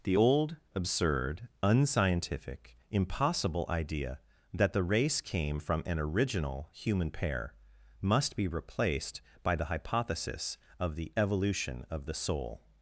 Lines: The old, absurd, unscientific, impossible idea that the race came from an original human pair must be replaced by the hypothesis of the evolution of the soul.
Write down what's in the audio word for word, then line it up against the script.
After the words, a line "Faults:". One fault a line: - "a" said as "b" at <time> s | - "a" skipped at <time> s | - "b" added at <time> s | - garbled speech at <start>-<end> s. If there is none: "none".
The old, absurd, unscientific, impossible idea that the race came from an original human pair must be replaced by the hypothesis of the evolution of the soul.
Faults:
none